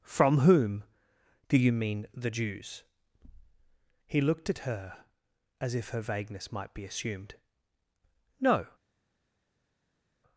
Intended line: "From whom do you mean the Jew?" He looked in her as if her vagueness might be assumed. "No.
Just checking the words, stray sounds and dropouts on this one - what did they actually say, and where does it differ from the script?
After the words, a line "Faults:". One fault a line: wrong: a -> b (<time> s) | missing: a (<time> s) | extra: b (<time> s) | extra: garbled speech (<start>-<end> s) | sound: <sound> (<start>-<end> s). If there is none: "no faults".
"From whom do you mean the Jews?" He looked at her as if her vagueness might be assumed. "No.
Faults:
wrong: Jew -> Jews (2.3 s)
wrong: in -> at (4.5 s)